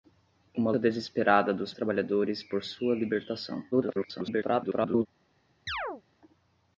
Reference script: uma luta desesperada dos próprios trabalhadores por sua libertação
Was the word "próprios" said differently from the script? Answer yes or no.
yes